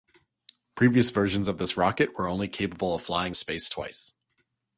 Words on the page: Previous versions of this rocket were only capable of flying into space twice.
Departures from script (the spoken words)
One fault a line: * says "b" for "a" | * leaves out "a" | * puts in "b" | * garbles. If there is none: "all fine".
* leaves out "into"